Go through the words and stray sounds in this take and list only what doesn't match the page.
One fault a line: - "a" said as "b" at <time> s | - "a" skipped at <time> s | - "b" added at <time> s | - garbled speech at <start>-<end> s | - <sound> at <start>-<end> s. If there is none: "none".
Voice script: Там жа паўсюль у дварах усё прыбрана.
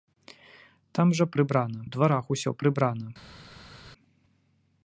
- "паўсюль" said as "прыбрана" at 1.4 s